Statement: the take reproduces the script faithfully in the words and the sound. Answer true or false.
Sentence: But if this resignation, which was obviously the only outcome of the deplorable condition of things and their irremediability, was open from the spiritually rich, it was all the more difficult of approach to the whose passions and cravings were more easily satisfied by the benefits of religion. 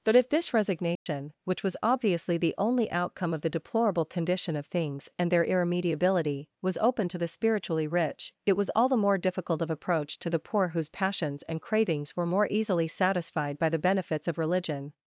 false